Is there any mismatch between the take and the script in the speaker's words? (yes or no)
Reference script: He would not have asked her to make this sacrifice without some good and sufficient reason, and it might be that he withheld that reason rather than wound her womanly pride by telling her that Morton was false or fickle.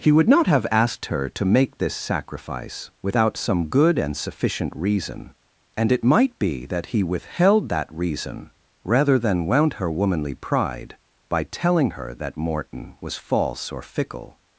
no